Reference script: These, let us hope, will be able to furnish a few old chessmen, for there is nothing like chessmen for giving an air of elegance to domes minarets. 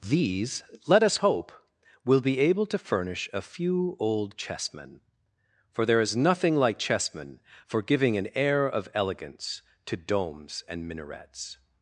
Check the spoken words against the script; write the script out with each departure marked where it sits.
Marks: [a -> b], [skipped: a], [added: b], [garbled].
These, let us hope, will be able to furnish a few old chessmen, for there is nothing like chessmen for giving an air of elegance to domes [added: and] minarets.